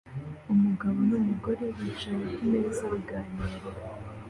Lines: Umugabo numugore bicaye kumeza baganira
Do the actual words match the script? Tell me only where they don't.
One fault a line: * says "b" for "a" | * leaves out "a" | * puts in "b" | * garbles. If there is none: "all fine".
all fine